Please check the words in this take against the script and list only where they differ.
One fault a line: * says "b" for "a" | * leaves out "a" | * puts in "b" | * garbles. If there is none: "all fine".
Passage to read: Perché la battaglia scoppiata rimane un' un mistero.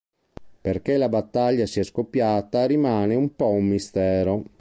* puts in "sia"
* puts in "po"